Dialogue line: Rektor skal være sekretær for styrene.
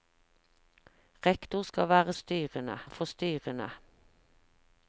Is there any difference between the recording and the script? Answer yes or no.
yes